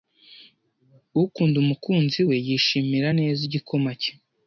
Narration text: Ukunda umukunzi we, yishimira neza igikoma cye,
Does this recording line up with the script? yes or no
yes